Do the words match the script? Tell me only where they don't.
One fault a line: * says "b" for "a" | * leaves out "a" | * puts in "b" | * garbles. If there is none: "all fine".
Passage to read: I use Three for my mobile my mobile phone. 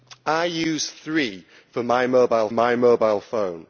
all fine